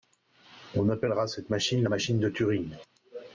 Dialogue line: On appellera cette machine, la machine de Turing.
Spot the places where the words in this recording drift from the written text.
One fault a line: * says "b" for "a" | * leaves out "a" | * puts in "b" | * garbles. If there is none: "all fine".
all fine